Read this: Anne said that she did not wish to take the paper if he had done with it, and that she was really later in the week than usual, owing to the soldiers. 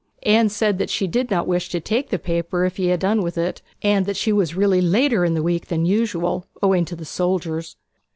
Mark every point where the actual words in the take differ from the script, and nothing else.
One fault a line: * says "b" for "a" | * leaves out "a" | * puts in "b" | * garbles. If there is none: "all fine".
all fine